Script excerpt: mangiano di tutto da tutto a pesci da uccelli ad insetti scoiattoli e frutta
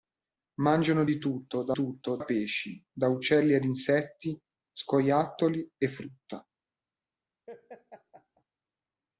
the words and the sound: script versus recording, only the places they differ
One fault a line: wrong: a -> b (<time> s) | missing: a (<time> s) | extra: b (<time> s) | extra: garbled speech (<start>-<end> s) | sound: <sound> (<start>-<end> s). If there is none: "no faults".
sound: laugh (7.5-8.4 s)